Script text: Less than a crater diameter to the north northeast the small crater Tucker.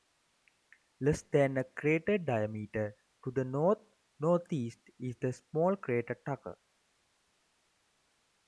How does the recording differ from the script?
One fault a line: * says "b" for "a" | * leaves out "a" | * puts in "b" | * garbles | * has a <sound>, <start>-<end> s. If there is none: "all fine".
* puts in "is"